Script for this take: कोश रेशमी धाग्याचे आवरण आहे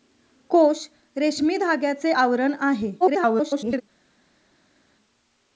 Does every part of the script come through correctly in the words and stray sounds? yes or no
no